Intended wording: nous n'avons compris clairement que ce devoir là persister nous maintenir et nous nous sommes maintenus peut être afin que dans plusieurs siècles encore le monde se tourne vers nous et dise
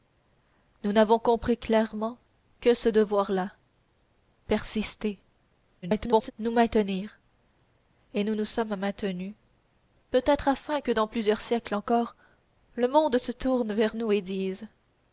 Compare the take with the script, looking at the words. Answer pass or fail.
fail